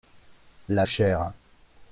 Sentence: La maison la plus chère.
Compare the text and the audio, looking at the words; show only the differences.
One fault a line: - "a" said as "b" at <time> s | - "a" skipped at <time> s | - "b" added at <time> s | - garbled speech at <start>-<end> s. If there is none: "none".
- "maison la plus" skipped at 0.9 s